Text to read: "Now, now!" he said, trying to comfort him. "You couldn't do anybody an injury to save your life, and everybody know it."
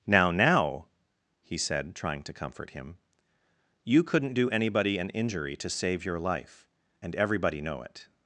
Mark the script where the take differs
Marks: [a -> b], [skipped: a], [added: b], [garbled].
"Now, now!" he said, trying to comfort him. "You couldn't do anybody an injury to save your life, and everybody know it."